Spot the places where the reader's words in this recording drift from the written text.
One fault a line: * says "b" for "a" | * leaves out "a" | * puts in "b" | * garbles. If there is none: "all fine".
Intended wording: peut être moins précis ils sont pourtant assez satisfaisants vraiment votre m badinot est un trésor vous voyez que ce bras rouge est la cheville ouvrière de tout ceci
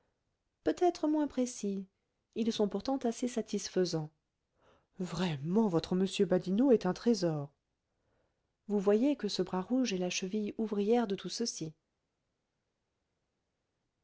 all fine